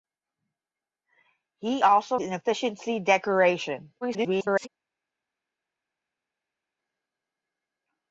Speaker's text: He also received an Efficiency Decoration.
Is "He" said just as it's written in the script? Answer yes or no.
yes